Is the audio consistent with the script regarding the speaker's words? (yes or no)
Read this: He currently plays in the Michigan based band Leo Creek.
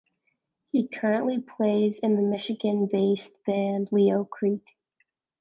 yes